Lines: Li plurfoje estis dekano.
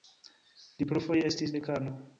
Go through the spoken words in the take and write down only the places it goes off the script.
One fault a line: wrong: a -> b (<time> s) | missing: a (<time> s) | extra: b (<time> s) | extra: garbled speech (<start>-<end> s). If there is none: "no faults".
no faults